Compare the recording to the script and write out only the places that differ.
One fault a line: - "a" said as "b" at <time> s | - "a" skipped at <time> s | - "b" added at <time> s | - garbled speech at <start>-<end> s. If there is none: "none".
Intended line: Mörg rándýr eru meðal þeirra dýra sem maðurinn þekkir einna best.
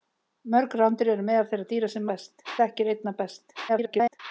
- "maðurinn" said as "best" at 2.1 s
- garbled speech at 3.7-4.2 s